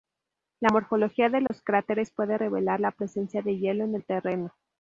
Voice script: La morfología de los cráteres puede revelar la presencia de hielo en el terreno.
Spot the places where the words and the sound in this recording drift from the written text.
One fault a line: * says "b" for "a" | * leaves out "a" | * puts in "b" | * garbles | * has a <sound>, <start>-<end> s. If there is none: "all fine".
* has a dropout, 1.5-1.5 s